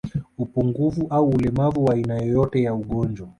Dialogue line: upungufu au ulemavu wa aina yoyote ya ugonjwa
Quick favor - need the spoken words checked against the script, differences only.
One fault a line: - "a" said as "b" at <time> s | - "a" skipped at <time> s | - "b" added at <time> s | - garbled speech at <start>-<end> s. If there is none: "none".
none